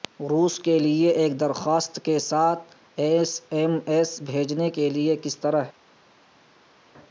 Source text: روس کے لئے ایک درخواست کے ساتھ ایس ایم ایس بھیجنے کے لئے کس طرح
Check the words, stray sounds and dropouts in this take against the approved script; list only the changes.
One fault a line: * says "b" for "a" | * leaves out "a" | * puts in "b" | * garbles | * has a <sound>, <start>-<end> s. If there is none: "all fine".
all fine